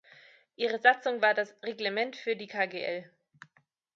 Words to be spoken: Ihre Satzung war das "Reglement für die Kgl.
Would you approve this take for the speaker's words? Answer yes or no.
yes